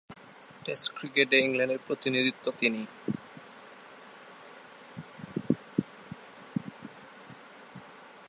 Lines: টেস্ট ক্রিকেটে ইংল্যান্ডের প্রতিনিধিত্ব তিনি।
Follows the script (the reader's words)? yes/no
yes